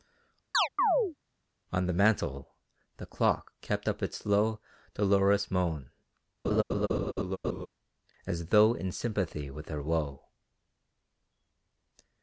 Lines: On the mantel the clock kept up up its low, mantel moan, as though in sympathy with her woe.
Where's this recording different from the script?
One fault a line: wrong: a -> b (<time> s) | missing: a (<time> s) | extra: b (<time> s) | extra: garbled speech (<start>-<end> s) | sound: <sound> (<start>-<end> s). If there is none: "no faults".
sound: chirp (0.5-1.2 s)
missing: up (4.0 s)
wrong: mantel -> dolorous (4.9 s)
sound: laugh (6.4-7.7 s)